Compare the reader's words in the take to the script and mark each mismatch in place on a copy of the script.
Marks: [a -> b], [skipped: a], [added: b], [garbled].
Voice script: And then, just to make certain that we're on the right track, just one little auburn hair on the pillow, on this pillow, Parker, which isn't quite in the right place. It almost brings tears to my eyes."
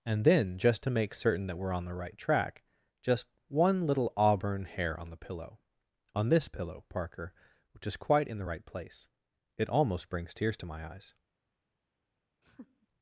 And then, just to make certain that we're on the right track, just one little auburn hair on the pillow, on this pillow, Parker, which [isn't -> is] quite in the right place. It almost brings tears to my eyes."